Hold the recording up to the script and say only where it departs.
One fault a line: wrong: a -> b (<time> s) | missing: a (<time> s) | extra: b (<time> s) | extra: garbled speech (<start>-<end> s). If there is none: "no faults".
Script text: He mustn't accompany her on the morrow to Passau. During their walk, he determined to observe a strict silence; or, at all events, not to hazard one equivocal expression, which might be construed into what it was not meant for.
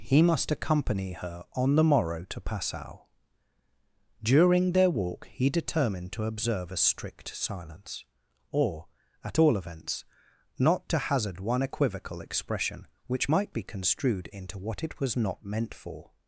wrong: mustn't -> must (0.2 s)